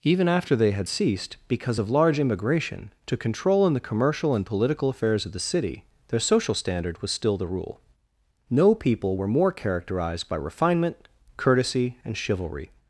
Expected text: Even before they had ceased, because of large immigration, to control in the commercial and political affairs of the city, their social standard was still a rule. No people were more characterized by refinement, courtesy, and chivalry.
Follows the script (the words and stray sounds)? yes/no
no